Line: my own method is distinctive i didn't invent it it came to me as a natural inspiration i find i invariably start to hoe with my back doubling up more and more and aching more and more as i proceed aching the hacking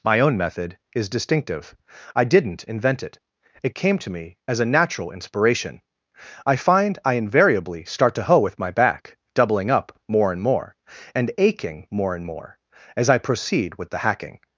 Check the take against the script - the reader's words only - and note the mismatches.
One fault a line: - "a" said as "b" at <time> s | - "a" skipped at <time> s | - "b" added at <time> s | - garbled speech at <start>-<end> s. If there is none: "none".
- "aching" said as "with" at 13.7 s